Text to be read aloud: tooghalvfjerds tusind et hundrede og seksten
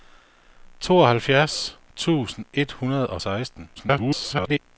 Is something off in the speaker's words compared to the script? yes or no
yes